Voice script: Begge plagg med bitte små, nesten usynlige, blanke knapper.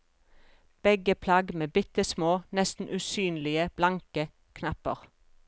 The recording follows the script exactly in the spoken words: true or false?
true